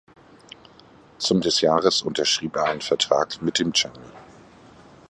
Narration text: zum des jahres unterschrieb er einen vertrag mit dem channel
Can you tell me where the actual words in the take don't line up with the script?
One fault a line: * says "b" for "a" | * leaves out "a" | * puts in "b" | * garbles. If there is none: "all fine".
all fine